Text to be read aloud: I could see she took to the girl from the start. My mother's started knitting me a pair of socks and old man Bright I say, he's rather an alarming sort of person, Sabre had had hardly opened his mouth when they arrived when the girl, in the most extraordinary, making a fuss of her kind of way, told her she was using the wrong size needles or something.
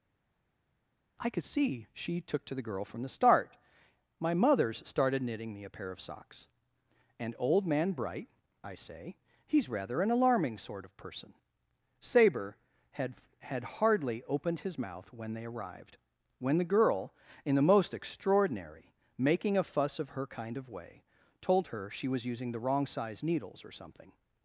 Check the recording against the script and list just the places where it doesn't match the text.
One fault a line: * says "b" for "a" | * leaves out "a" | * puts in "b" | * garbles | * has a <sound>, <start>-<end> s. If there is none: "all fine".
all fine